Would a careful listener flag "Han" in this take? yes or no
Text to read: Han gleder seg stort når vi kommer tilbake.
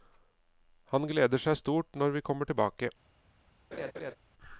no